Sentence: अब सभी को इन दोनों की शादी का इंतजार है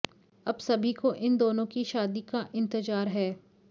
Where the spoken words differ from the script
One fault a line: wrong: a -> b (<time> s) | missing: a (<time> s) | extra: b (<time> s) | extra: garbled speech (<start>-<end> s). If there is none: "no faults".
no faults